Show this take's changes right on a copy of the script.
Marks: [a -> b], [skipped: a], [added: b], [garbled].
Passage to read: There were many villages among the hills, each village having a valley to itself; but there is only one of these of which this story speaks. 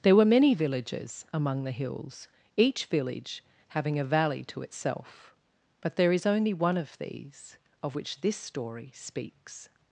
There were many villages among the hills, each village having a valley to itself; but there is only one of these of which this story speaks.